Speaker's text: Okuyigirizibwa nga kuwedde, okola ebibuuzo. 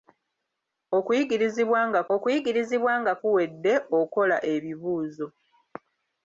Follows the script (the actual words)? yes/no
no